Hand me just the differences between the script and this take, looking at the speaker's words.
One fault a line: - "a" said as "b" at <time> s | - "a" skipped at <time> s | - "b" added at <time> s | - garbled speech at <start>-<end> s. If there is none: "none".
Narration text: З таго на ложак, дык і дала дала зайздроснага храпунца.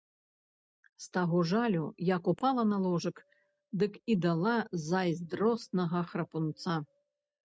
- "жалю як упала" added at 1.5 s
- "дала" skipped at 4.6 s